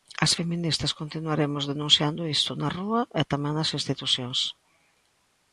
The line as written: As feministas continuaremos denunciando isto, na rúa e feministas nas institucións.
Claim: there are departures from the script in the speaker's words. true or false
true